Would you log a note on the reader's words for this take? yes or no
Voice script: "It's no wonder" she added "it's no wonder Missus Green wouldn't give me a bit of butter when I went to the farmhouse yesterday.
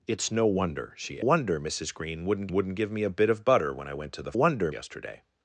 yes